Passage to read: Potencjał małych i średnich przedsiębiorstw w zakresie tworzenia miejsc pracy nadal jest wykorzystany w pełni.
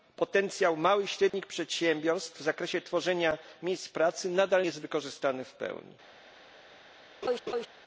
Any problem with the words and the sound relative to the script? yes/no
yes